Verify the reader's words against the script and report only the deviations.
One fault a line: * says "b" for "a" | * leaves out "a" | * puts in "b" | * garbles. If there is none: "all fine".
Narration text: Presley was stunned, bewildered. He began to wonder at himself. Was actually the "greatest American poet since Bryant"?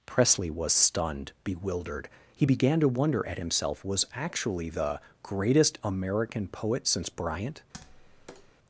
all fine